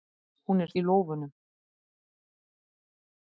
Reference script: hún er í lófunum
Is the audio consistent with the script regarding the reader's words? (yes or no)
yes